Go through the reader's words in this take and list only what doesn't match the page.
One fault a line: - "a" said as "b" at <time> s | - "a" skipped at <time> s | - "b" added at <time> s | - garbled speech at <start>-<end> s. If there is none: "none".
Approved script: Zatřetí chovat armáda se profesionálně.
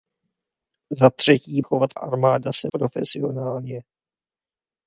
none